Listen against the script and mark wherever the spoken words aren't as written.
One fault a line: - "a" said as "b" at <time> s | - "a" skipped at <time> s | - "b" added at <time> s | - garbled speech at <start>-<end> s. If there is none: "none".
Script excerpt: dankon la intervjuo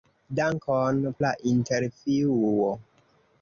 none